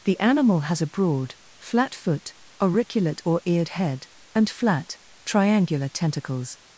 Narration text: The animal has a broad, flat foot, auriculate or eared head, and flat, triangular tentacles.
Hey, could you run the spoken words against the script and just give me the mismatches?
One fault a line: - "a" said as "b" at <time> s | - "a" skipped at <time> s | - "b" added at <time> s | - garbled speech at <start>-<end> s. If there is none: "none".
none